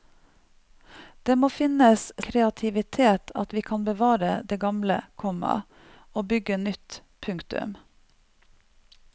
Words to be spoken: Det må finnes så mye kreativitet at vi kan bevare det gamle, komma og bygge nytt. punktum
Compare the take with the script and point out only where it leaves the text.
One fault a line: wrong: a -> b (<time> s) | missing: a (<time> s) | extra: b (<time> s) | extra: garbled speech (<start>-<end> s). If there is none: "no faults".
missing: så mye (2.0 s)